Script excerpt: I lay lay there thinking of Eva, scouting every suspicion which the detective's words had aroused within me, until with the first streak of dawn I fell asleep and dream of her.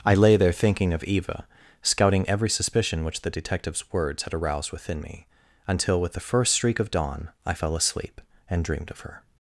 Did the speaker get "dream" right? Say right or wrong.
wrong